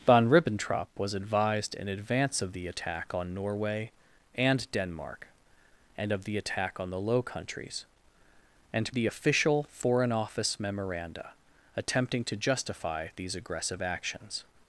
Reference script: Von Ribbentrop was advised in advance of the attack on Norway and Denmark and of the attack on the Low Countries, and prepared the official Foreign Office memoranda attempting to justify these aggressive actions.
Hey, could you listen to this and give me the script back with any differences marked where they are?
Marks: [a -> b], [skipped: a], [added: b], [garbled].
Von Ribbentrop was advised in advance of the attack on Norway and Denmark and of the attack on the Low Countries, and [skipped: prepared] the official Foreign Office memoranda attempting to justify these aggressive actions.